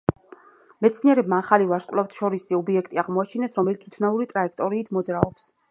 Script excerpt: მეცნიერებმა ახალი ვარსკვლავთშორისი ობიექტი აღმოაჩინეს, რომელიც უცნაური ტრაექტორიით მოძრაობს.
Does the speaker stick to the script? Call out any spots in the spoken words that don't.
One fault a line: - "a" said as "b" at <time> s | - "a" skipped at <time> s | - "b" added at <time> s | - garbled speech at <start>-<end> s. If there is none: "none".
none